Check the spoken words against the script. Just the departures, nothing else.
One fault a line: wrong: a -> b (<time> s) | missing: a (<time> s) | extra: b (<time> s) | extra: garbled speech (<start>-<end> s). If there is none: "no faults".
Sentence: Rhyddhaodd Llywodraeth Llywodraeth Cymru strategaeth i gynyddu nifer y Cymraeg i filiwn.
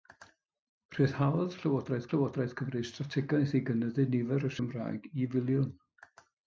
no faults